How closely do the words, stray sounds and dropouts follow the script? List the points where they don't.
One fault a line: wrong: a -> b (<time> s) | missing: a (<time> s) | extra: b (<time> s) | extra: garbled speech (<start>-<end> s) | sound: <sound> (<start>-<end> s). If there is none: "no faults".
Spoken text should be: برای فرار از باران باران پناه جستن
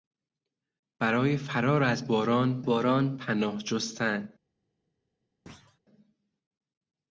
sound: thud (5.5-5.8 s)